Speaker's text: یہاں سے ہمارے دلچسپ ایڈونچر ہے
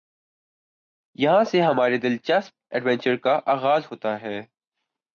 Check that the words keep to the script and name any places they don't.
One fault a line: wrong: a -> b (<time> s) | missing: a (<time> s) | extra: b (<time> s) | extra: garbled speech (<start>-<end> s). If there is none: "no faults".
extra: کا آغاز ہوتا (3.2 s)